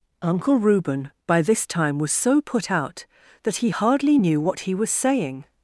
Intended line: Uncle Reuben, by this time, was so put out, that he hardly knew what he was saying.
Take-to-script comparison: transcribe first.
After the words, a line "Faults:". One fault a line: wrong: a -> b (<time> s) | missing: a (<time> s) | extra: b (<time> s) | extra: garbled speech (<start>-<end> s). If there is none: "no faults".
Uncle Reuben, by this time, was so put out, that he hardly knew what he was saying.
Faults:
no faults